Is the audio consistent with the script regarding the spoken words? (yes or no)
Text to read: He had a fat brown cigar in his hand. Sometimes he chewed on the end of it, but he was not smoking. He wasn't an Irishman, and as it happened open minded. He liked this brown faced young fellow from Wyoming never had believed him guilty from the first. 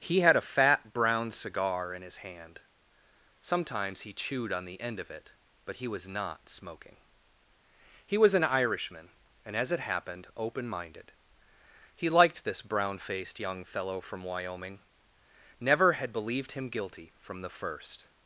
no